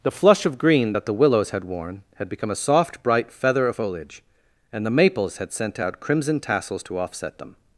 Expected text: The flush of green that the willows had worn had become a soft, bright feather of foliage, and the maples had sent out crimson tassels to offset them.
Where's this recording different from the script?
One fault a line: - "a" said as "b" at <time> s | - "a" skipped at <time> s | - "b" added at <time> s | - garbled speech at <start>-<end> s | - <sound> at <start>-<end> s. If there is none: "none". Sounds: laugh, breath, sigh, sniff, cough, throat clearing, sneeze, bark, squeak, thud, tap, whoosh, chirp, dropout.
none